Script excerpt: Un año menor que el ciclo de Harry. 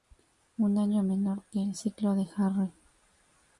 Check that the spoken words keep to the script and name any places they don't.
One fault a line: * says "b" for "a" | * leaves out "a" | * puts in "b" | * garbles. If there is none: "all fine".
all fine